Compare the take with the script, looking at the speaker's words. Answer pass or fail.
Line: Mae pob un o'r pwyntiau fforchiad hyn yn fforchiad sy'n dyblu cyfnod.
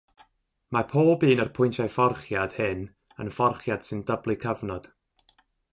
pass